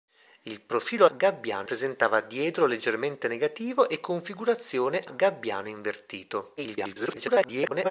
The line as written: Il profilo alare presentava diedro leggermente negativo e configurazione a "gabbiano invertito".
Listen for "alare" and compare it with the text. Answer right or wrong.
wrong